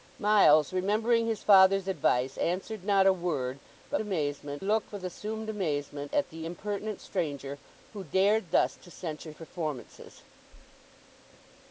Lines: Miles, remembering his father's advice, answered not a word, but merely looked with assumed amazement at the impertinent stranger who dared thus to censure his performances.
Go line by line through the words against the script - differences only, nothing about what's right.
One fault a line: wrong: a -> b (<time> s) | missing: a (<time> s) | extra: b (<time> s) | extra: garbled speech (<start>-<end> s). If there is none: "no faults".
wrong: merely -> amazement (4.0 s)
missing: his (9.3 s)